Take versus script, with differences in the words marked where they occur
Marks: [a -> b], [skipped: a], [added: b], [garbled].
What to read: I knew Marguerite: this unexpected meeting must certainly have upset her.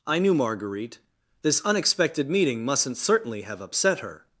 I knew Marguerite: this unexpected meeting [must -> mustn't] certainly have upset her.